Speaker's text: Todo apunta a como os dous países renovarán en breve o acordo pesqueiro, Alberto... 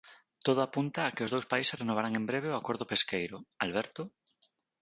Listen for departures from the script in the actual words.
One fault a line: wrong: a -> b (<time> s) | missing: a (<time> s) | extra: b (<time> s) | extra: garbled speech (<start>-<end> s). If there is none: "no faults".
wrong: como -> que (1.1 s)